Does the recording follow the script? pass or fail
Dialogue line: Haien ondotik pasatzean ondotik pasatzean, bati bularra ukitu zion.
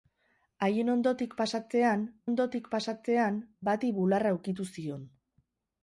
pass